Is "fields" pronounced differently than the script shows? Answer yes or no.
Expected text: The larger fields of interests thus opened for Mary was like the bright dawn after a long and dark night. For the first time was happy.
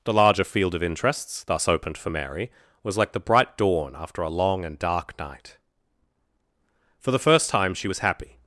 yes